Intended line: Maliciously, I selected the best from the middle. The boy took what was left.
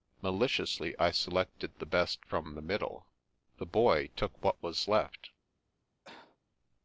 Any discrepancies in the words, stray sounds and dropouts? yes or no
yes